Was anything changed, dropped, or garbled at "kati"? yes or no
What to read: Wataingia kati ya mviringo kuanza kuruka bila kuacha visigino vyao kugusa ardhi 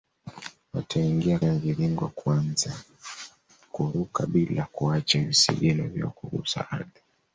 yes